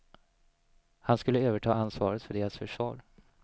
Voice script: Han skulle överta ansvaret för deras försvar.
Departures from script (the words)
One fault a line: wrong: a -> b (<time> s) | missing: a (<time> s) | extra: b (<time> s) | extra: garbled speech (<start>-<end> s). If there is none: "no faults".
no faults